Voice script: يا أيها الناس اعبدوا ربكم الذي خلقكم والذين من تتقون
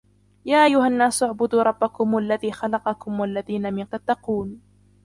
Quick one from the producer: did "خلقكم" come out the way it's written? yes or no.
yes